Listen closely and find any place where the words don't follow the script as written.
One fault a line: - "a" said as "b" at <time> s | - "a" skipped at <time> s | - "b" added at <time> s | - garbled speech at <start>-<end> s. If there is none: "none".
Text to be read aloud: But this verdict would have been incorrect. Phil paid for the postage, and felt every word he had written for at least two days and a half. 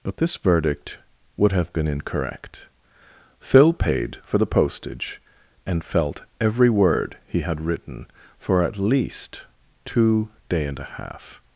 - "days" said as "day" at 10.5 s